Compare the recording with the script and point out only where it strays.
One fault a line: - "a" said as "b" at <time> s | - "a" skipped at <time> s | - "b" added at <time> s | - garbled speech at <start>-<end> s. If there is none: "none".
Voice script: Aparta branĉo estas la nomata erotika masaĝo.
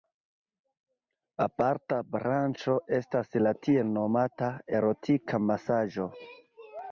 - "tiel" added at 3.7 s